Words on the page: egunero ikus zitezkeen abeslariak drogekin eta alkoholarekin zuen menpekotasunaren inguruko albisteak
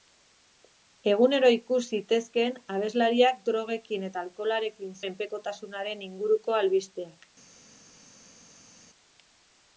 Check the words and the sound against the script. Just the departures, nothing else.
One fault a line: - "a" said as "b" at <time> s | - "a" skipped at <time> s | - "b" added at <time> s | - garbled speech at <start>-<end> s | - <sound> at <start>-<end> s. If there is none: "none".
- "zuen" skipped at 5.0 s